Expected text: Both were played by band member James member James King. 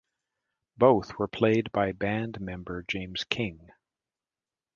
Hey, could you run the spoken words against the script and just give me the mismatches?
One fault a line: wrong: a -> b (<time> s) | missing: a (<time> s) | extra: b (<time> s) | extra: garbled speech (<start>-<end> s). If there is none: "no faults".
missing: member James (3.2 s)